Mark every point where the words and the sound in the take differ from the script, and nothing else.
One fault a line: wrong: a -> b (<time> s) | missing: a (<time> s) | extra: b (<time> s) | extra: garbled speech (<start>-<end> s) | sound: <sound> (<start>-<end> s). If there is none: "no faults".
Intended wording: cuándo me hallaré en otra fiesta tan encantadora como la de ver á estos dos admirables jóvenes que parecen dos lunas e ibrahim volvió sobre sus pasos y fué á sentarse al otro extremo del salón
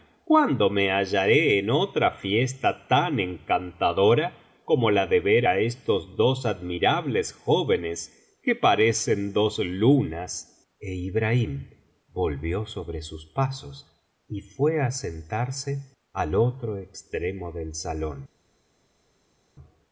no faults